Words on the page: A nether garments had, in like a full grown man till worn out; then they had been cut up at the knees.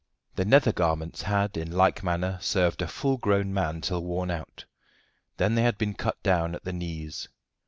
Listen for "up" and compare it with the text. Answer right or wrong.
wrong